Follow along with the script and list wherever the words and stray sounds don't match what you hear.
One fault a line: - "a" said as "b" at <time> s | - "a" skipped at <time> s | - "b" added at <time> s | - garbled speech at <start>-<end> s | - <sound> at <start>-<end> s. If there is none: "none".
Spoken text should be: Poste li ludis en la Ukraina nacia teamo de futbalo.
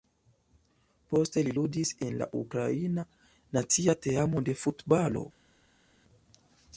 none